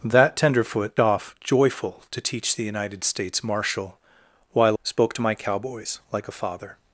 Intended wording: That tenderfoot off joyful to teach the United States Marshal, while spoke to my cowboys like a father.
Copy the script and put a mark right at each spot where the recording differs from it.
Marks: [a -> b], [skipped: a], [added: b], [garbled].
That tenderfoot off joyful to teach the United States Marshal, while spoke to my cowboys like a father.